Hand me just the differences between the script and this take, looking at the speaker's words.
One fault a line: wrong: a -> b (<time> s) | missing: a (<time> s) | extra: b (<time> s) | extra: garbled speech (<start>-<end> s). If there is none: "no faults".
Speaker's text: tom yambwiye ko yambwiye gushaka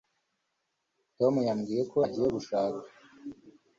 wrong: yambwiye -> agiye (2.1 s)